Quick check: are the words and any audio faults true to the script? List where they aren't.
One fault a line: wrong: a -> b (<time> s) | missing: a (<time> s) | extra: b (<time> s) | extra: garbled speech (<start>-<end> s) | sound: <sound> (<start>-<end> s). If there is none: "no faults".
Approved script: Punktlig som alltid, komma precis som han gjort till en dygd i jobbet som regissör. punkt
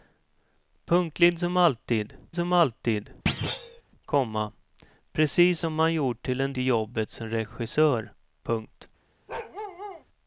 extra: som alltid (2.3 s)
sound: thud (3.3-3.8 s)
missing: dygd (6.5 s)
sound: bark (9.3-10.0 s)